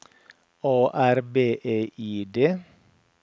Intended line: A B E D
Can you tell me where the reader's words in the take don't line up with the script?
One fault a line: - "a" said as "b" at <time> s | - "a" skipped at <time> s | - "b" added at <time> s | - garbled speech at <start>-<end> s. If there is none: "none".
- "R" added at 0.9 s
- "I" added at 2.0 s